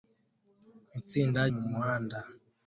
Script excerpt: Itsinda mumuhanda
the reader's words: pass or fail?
pass